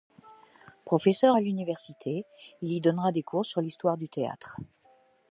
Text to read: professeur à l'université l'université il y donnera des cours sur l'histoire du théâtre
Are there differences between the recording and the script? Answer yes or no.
yes